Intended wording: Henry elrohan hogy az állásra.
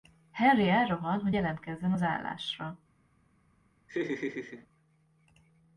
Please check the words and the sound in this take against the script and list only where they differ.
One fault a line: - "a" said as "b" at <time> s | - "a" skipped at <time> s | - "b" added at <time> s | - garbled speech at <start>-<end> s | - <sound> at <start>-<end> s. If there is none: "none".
- "jelentkezzen" added at 1.3 s
- laugh at 3.9-4.7 s